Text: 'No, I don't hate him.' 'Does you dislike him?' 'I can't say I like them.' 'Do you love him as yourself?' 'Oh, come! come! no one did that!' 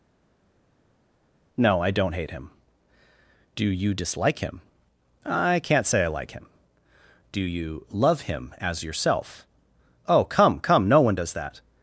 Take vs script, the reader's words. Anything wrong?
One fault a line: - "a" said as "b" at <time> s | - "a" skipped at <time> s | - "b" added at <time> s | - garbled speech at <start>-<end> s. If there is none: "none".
- "Does" said as "Do" at 3.5 s
- "them" said as "him" at 6.3 s
- "did" said as "does" at 11.1 s